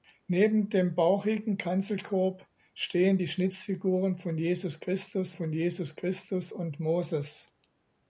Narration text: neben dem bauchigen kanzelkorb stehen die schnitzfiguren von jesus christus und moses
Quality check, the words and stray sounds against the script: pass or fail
fail